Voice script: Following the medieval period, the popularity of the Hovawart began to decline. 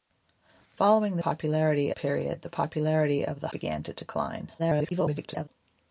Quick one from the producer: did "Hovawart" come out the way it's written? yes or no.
no